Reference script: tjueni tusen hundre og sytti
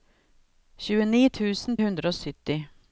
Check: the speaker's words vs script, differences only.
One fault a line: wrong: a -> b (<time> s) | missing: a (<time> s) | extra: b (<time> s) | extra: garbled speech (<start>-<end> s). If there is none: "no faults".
no faults